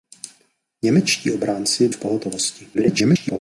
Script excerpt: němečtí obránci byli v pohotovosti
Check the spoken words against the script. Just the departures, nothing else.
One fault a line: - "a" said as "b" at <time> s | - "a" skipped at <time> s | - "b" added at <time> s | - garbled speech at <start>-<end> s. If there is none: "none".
- "byli" skipped at 1.9 s
- garbled speech at 2.7-3.4 s